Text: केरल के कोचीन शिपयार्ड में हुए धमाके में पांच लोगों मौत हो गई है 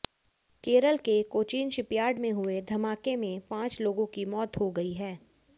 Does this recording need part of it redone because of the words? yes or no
yes